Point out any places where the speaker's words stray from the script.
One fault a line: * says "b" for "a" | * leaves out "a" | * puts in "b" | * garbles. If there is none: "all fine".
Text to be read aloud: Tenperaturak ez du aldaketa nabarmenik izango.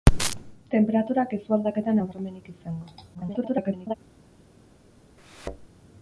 * garbles